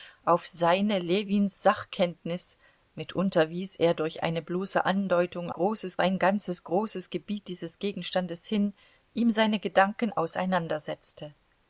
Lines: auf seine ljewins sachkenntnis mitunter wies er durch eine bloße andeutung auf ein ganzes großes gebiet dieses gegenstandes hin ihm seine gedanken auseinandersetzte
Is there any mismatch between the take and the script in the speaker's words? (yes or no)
yes